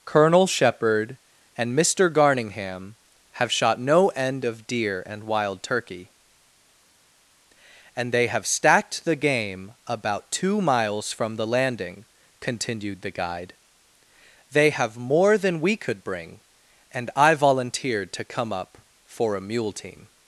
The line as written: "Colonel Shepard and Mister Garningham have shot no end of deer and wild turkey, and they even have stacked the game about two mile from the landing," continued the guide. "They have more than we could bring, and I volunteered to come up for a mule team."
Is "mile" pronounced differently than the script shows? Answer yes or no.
yes